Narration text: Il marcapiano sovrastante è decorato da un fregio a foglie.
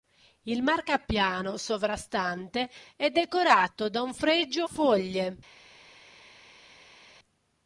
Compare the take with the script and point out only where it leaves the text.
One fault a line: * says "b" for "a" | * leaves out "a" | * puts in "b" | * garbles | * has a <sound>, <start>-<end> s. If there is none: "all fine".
* leaves out "a"